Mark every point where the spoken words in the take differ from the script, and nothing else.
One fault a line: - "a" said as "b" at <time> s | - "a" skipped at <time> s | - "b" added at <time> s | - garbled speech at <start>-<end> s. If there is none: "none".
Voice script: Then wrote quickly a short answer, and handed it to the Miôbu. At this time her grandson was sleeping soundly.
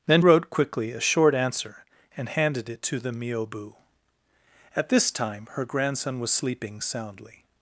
none